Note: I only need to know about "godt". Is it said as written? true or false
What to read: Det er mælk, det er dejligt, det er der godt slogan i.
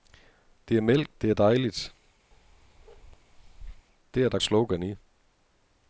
false